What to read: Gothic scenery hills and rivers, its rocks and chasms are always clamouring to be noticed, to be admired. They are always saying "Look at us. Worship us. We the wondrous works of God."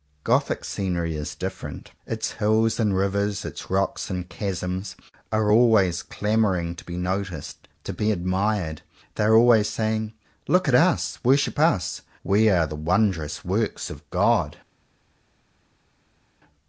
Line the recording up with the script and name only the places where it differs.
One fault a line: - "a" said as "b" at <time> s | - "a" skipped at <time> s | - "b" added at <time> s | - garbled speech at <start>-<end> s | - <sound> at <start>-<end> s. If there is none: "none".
- "is different Its" added at 1.1 s
- "are" added at 12.5 s